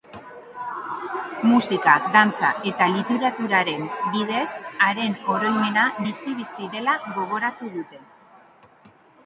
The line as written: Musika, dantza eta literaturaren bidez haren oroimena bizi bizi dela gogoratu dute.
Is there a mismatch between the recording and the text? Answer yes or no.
no